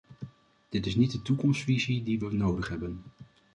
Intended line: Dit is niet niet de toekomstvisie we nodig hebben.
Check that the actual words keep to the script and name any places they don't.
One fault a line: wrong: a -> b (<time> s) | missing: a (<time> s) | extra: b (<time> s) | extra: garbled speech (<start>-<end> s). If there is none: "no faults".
missing: niet (1.1 s)
extra: die (2.0 s)